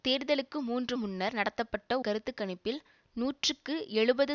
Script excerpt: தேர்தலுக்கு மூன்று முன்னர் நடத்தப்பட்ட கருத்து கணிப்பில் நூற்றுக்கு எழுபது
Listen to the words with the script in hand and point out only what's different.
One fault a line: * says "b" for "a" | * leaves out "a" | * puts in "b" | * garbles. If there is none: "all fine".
all fine